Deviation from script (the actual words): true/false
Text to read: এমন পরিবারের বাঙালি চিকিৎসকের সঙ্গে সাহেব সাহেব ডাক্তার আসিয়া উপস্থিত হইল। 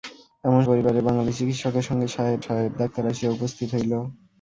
false